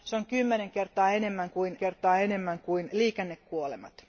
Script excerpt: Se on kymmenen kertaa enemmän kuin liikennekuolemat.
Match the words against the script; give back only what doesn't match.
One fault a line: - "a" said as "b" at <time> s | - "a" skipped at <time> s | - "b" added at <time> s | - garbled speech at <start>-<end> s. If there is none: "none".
- "kertaa enemmän kuin" added at 1.8 s